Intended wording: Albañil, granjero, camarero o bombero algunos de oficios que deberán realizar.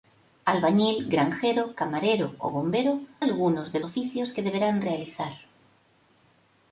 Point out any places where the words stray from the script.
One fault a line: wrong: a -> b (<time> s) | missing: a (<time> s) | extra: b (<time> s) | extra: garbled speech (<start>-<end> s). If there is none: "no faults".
no faults